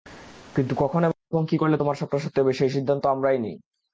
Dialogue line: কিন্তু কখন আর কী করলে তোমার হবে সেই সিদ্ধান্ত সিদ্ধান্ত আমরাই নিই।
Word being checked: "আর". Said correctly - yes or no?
no